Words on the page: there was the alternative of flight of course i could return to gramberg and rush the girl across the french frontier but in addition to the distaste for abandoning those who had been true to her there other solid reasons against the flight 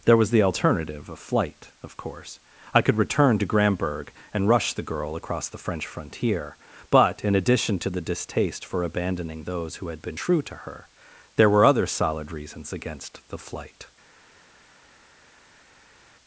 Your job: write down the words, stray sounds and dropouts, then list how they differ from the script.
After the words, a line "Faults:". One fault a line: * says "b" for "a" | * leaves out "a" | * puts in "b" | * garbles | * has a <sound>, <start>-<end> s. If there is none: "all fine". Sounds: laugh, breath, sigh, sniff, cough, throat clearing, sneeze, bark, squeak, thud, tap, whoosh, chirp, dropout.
there was the alternative of flight of course i could return to gramberg and rush the girl across the french frontier but in addition to the distaste for abandoning those who had been true to her there were other solid reasons against the flight
Faults:
* puts in "were"